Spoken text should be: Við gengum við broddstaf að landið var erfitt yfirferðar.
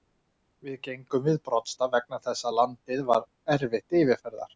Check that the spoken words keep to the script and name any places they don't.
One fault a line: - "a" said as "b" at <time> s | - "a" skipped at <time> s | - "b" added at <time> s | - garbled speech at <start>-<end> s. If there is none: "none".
- "vegna þess" added at 2.0 s